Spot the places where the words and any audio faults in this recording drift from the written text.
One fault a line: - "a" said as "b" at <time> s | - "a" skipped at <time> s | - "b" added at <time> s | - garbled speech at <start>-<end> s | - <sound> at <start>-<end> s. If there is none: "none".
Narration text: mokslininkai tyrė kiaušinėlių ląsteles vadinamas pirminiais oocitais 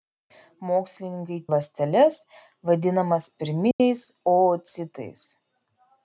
- "tyrė kiaušinėlių" skipped at 1.4 s
- dropout at 3.7-3.8 s